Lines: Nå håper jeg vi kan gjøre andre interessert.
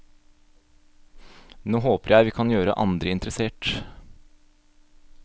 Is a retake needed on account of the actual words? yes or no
no